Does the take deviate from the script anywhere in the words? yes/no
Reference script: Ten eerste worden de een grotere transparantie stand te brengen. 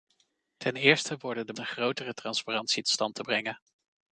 no